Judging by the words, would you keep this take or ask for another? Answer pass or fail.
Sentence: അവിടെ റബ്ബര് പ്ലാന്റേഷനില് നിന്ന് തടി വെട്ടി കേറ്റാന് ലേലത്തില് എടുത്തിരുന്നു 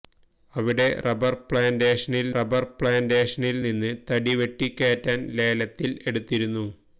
fail